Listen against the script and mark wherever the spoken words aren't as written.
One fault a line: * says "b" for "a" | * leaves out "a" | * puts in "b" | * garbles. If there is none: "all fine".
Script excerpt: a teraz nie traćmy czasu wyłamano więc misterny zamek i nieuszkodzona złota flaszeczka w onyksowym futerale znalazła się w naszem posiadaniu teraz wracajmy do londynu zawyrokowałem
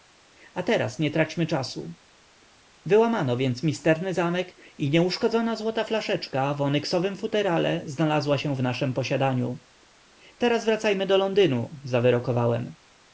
all fine